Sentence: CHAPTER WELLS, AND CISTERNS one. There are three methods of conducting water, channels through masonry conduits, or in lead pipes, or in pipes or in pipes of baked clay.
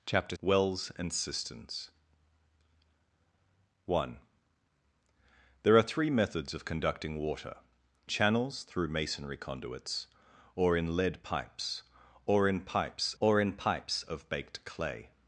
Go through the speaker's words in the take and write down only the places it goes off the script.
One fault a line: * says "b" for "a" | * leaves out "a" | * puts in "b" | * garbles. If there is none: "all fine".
all fine